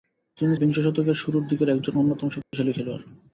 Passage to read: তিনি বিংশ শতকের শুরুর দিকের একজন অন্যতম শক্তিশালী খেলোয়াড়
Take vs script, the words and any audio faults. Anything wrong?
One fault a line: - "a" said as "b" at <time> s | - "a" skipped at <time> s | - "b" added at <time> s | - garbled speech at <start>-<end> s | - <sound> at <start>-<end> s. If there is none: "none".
- dropout at 2.4-2.5 s